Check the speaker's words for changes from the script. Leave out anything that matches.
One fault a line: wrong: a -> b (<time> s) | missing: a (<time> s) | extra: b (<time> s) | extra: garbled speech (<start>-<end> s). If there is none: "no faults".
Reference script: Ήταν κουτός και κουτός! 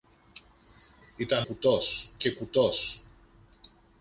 no faults